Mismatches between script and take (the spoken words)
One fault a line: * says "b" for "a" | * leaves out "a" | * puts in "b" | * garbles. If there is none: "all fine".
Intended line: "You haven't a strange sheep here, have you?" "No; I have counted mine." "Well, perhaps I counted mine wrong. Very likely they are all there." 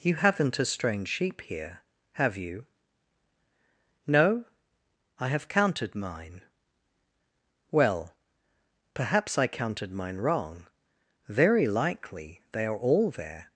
all fine